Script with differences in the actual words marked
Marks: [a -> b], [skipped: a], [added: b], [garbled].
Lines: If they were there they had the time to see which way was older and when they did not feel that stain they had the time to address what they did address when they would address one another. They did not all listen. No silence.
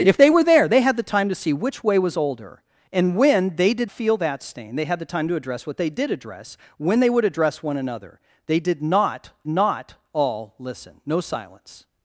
If they were there they had the time to see which way was older and when they did [skipped: not] feel that stain they had the time to address what they did address when they would address one another. They did not [added: not] all listen. No silence.